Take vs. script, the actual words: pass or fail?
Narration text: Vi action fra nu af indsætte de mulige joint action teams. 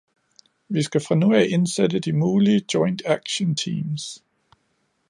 fail